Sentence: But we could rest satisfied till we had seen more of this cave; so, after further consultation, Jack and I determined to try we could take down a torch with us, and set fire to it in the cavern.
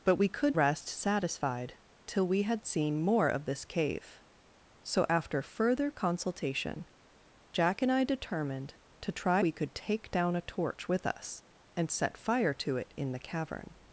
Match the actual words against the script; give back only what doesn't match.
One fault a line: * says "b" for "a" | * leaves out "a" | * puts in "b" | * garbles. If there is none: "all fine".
all fine